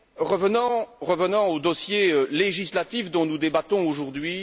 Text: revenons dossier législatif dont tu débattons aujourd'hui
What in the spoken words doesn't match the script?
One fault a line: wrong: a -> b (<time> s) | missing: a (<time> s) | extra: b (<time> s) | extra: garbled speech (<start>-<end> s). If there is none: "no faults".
extra: au (1.5 s)
wrong: tu -> nous (3.2 s)